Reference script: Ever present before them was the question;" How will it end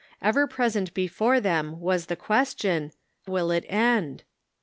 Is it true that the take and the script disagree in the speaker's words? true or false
true